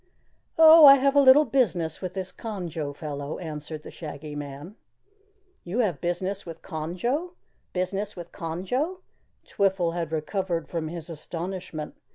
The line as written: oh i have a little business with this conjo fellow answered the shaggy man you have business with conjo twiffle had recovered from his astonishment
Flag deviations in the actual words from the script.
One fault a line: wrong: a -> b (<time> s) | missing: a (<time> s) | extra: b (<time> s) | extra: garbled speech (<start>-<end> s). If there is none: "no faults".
extra: business with conjo (7.7 s)